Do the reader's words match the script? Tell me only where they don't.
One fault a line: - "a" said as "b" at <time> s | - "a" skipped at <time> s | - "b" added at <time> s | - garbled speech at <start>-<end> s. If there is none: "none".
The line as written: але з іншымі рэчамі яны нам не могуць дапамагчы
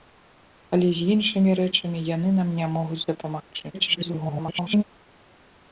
- garbled speech at 3.7-4.8 s